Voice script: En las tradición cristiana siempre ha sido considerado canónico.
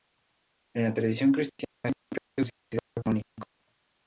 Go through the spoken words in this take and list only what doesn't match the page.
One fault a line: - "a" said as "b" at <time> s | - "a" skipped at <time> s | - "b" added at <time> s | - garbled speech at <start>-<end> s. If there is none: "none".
- "las" said as "la" at 0.8 s